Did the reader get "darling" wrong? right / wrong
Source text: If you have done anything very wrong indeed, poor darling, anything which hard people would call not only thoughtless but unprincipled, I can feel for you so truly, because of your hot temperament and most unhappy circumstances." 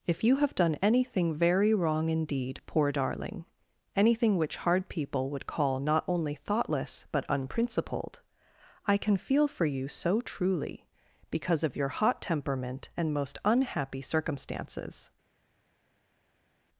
right